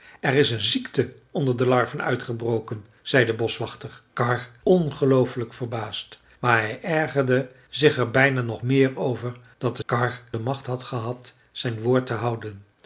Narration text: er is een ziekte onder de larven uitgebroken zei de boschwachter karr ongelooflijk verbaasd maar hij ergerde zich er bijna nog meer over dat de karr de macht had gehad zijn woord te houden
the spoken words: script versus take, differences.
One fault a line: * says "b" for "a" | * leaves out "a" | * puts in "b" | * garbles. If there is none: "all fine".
all fine